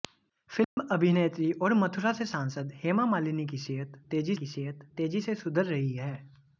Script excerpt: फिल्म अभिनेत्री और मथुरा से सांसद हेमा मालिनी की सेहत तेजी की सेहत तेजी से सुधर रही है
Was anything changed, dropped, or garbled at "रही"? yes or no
no